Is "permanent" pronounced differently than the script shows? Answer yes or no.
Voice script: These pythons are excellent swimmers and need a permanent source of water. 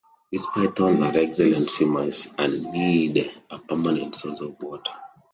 no